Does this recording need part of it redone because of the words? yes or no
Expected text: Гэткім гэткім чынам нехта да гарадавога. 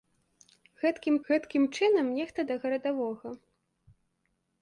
no